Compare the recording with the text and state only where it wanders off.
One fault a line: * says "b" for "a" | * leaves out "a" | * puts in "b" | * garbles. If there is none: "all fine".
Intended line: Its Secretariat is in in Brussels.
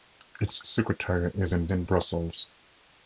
all fine